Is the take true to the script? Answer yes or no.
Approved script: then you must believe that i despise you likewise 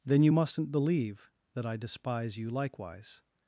no